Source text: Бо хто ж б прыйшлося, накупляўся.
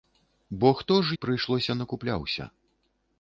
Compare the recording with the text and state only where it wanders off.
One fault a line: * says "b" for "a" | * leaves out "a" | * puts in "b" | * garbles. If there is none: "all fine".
all fine